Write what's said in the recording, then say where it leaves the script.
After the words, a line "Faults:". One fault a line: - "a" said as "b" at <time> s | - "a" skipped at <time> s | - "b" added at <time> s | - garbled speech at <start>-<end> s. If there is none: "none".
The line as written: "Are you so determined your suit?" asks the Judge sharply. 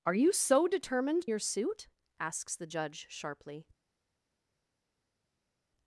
"Are you so determined your suit?" asks the Judge sharply.
Faults:
none